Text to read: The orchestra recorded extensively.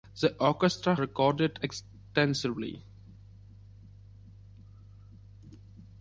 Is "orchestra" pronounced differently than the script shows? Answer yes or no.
no